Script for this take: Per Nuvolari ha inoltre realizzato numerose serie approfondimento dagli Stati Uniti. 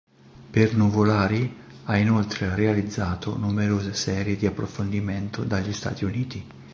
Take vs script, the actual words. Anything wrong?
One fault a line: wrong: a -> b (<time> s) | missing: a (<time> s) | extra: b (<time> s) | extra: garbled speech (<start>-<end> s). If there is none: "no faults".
extra: di (4.4 s)